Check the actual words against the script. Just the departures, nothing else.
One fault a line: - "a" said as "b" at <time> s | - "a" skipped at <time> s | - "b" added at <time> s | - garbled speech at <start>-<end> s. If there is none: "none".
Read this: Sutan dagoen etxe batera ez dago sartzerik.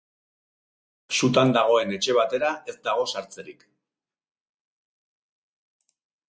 none